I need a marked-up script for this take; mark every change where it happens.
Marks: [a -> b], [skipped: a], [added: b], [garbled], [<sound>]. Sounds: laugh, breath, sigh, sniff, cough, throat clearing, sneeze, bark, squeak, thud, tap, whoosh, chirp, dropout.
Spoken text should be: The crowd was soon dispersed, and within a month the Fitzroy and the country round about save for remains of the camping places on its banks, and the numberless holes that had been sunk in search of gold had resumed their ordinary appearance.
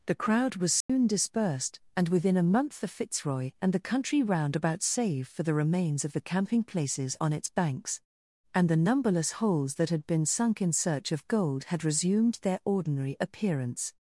The crowd was soon [dropout] dispersed, and within a month the Fitzroy and the country round about save for [added: the] remains of the camping places on its banks, and the numberless holes that had been sunk in search of gold had resumed their ordinary appearance.